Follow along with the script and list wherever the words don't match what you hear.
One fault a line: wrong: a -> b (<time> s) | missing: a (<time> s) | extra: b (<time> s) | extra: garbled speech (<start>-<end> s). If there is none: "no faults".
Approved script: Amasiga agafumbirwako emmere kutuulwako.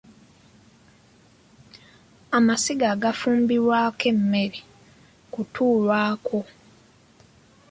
no faults